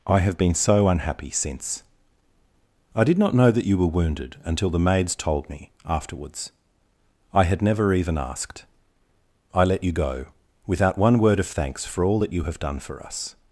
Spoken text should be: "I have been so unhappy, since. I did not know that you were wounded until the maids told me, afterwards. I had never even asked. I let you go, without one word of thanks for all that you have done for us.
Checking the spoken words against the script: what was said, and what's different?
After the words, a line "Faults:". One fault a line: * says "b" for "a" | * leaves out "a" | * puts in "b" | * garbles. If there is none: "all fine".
"I have been so unhappy, since. I did not know that you were wounded until the maids told me, afterwards. I had never even asked. I let you go, without one word of thanks for all that you have done for us.
Faults:
all fine